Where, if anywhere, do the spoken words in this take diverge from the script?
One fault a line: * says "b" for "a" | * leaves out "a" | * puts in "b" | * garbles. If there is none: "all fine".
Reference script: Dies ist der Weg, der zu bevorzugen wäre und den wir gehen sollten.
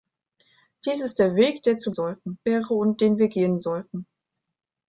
* says "sollten" for "bevorzugen"